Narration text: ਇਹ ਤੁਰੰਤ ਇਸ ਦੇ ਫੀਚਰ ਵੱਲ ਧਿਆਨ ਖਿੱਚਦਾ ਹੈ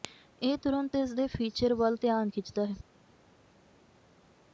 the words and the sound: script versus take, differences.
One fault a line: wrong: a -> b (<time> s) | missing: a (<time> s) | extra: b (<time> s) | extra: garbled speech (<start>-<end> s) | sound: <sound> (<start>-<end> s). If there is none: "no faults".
no faults